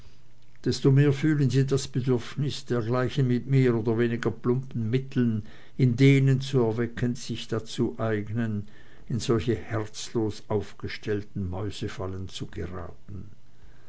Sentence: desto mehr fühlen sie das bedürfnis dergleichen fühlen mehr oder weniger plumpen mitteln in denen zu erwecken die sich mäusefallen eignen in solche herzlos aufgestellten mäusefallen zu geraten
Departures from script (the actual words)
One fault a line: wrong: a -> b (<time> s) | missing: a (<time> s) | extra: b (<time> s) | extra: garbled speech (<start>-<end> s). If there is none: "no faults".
wrong: fühlen -> mit (3.3 s)
wrong: mäusefallen -> dazu (7.5 s)